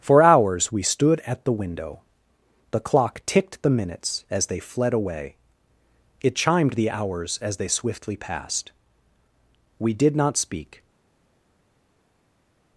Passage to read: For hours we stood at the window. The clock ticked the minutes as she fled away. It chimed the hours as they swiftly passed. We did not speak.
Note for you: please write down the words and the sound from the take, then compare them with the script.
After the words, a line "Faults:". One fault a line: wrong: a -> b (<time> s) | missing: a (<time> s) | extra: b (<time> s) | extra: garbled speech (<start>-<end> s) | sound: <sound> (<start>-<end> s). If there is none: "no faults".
For hours we stood at the window. The clock ticked the minutes as they fled away. It chimed the hours as they swiftly passed. We did not speak.
Faults:
wrong: she -> they (4.5 s)